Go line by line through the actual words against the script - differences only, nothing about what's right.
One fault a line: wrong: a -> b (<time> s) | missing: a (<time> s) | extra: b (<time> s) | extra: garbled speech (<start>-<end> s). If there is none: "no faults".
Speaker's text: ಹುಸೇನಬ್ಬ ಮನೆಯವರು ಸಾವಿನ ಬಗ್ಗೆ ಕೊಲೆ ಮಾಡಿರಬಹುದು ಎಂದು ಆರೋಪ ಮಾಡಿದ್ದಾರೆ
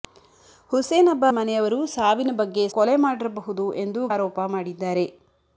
no faults